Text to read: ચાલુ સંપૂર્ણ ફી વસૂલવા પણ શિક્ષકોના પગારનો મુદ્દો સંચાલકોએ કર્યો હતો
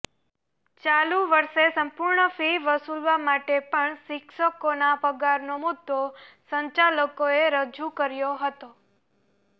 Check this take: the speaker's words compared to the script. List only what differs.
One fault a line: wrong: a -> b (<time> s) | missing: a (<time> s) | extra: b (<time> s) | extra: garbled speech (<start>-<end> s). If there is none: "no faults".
extra: વર્ષે (1.3 s)
extra: માટે (3.2 s)
extra: રજૂ (7.5 s)